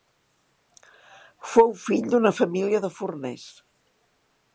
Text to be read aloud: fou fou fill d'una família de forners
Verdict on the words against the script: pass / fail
fail